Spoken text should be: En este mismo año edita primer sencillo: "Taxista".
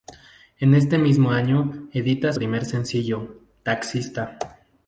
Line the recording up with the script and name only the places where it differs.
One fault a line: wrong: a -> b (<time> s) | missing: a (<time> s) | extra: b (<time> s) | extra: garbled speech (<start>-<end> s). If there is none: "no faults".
no faults